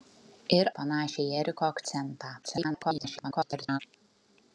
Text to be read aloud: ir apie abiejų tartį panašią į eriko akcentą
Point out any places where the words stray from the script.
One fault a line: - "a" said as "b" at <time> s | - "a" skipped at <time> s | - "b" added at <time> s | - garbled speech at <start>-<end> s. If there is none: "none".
- "apie abiejų tartį" skipped at 0.7 s
- garbled speech at 2.4-3.8 s